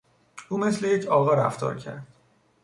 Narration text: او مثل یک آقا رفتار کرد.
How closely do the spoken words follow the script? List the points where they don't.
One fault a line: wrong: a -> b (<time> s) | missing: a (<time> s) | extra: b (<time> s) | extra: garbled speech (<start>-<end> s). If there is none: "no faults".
no faults